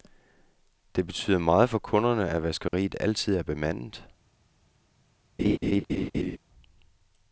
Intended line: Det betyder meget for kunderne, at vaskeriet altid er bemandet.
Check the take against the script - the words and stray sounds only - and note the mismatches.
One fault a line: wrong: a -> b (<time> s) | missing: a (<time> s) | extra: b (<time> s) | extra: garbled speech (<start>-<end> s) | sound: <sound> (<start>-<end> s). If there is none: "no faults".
sound: dropout (2.7-2.7 s)
sound: laugh (5.4-6.4 s)